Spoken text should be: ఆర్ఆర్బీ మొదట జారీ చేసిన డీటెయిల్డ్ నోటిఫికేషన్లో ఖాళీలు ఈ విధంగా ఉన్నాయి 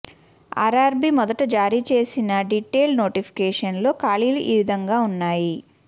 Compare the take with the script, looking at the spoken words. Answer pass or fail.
pass